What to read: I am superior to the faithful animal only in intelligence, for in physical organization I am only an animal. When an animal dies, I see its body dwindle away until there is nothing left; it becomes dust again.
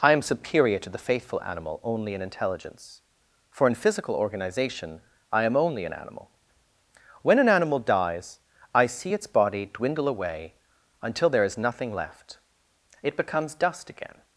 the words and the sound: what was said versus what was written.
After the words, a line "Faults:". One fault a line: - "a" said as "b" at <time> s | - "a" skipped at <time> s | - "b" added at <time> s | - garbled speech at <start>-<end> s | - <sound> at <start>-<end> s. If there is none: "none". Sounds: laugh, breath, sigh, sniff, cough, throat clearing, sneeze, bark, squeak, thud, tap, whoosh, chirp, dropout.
I am superior to the faithful animal only in intelligence, for in physical organization I am only an animal. When an animal dies, I see its body dwindle away until there is nothing left; it becomes dust again.
Faults:
none